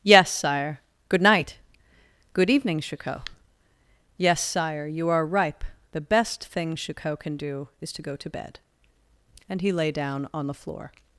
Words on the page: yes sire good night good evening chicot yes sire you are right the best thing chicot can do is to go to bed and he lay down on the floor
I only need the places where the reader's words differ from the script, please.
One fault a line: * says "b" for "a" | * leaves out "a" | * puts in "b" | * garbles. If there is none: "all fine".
* says "ripe" for "right"